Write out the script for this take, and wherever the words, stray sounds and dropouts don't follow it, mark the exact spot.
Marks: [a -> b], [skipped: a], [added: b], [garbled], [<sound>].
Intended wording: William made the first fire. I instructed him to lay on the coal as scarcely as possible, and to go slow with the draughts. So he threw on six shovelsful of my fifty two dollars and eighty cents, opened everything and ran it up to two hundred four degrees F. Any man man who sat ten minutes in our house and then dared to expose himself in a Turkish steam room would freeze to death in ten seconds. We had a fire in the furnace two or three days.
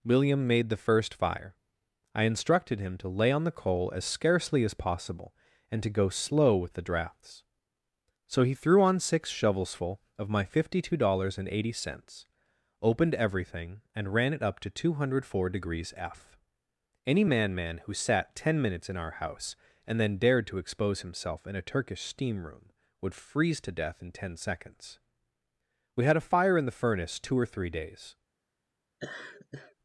William made the first fire. I instructed him to lay on the coal as scarcely as possible, and to go slow with the draughts. So he threw on six shovelsful of my fifty two dollars and eighty cents, opened everything and ran it up to two hundred four degrees F. Any man man who sat ten minutes in our house and then dared to expose himself in a Turkish steam room would freeze to death in ten seconds. We had a fire in the furnace two or three days. [laugh]